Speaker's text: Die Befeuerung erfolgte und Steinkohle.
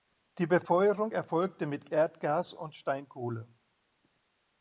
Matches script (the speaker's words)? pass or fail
fail